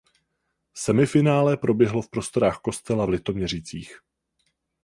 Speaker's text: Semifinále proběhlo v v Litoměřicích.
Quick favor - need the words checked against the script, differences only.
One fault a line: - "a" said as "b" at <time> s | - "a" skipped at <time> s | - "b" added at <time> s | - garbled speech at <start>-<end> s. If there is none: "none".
- "prostorách Kostela" added at 2.1 s